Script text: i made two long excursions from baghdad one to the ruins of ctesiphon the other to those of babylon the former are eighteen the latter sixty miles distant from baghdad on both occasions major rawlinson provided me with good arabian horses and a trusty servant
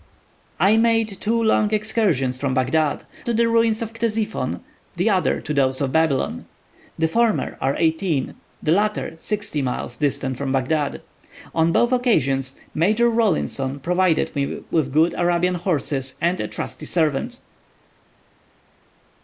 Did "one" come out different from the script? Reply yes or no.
yes